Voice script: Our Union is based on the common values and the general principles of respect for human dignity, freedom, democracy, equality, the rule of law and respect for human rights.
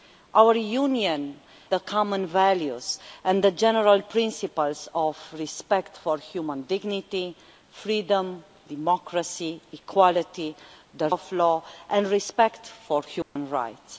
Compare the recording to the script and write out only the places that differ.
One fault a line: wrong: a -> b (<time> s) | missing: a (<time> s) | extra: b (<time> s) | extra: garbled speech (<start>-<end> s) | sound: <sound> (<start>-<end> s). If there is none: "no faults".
missing: is based on (1.4 s)
missing: rule (11.1 s)
sound: dropout (13.2-13.4 s)